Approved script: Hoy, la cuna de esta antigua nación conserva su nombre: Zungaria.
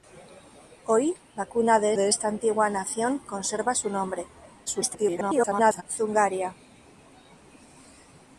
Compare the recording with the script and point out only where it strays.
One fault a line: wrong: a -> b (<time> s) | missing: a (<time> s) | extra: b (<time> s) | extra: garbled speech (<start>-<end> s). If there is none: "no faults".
extra: de (1.9 s)
extra: garbled speech (4.7-5.8 s)